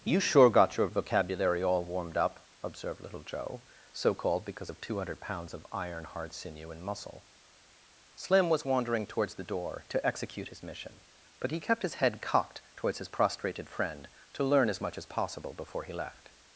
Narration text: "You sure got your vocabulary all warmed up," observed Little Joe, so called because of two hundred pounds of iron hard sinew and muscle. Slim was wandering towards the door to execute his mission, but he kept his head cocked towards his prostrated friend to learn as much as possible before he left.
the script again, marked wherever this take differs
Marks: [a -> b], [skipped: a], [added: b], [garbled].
"You sure got your vocabulary all warmed up," observed Little Joe, so called because of two hundred pounds of iron hard sinew and muscle. Slim was wandering towards the door to execute his mission, but he kept his head cocked towards his prostrated friend to learn as much as possible before he left.